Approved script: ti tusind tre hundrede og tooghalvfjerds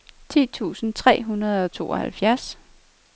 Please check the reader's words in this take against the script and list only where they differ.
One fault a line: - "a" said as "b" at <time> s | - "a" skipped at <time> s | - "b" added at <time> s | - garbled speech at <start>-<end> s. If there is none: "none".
none